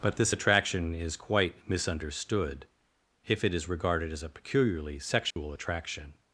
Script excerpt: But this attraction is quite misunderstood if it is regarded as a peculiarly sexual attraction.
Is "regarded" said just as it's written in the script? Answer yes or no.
yes